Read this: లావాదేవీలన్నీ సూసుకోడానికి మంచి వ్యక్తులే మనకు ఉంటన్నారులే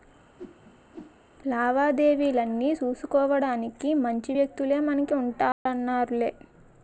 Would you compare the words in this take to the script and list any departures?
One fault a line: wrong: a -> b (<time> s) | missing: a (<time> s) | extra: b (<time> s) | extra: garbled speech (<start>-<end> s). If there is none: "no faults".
no faults